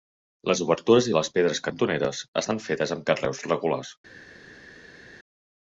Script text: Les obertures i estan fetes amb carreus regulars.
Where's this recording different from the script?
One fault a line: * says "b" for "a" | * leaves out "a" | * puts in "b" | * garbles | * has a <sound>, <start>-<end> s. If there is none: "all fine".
* puts in "les pedres cantoneres"